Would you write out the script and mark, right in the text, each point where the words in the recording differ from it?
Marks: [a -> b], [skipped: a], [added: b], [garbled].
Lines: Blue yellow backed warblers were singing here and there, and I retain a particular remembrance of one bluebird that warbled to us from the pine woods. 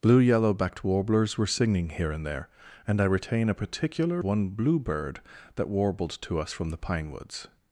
Blue yellow backed warblers were singing here and there, and I retain a particular [skipped: remembrance of] one bluebird that warbled to us from the pine woods.